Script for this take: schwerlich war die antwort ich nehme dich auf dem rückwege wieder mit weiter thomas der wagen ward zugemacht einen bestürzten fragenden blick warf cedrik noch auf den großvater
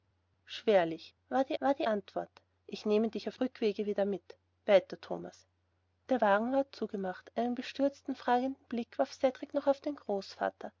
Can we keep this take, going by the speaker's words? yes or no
no